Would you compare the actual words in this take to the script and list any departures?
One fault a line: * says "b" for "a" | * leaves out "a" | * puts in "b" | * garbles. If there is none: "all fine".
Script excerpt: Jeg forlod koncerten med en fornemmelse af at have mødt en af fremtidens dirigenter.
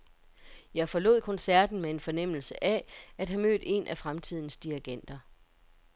all fine